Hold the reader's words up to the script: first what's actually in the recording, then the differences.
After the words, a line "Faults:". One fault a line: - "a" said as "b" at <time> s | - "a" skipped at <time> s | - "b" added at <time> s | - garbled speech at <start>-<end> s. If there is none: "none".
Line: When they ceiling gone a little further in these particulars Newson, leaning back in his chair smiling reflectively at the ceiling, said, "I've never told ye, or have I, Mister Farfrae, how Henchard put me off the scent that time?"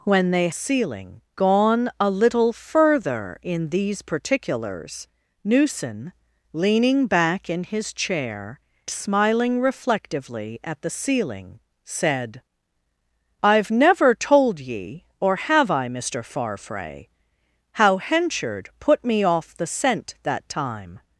When they ceiling gone a little further in these particulars Newson, leaning back in his chair smiling reflectively at the ceiling, said, "I've never told ye, or have I, Mister Farfrae, how Henchard put me off the scent that time?"
Faults:
none